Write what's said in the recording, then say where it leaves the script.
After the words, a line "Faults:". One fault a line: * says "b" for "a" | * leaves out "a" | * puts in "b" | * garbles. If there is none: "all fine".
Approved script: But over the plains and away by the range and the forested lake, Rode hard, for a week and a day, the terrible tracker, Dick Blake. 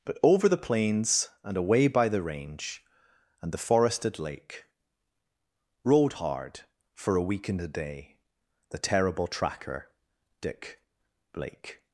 But over the plains and away by the range and the forested lake, Rode hard, for a week and a day, the terrible tracker, Dick Blake.
Faults:
all fine